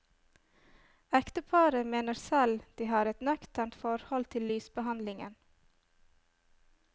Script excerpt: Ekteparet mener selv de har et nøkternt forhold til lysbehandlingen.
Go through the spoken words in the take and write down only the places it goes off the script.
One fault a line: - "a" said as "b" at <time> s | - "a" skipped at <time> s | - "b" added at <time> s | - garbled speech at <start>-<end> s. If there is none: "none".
none